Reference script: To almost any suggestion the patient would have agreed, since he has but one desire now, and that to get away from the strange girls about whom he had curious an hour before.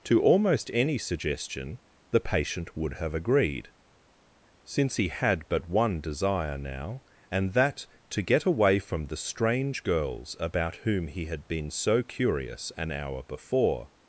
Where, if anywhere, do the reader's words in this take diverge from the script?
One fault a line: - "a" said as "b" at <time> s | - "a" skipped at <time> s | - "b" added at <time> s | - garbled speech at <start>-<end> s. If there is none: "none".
- "has" said as "had" at 5.1 s
- "been so" added at 11.5 s